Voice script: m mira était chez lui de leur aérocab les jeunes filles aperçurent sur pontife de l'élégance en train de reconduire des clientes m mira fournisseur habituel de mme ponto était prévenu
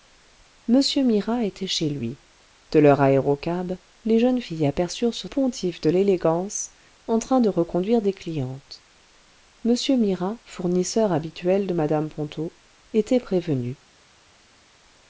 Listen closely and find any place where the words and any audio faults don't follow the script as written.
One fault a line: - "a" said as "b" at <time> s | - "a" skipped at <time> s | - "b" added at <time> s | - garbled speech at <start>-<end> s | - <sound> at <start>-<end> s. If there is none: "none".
none